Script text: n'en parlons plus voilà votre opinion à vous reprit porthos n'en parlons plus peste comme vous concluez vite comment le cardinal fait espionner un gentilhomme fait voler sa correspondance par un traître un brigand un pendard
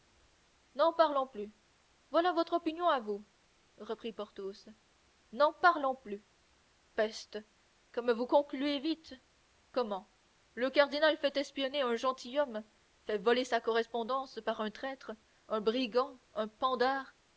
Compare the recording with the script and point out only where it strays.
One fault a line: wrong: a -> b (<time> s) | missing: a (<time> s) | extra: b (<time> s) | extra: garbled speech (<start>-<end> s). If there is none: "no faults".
no faults